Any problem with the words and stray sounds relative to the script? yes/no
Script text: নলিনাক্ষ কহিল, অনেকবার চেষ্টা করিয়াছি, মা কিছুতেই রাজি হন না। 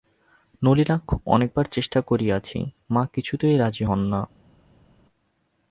yes